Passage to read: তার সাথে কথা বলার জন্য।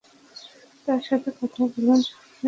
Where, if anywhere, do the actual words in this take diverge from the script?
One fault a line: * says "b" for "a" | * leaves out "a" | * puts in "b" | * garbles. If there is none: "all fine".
all fine